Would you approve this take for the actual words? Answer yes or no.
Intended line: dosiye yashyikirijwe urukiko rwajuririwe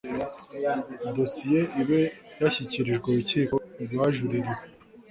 no